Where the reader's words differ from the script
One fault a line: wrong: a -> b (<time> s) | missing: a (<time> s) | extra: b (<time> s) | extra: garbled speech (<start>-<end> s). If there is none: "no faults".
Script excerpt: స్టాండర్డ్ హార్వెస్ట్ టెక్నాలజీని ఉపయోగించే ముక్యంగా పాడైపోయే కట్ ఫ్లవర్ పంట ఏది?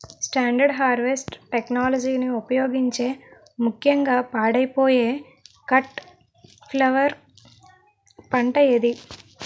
no faults